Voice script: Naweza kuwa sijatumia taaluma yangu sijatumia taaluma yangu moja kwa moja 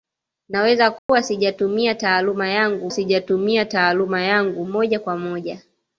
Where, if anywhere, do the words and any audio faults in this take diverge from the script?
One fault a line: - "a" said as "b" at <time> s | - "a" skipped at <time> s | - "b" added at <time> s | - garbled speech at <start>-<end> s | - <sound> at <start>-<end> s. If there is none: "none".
- dropout at 1.0-1.1 s